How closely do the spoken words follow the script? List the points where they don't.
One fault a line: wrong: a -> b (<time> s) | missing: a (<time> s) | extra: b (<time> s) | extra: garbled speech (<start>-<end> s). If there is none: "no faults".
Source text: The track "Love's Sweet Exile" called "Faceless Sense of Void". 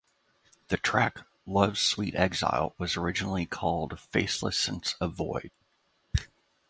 extra: was originally (2.8 s)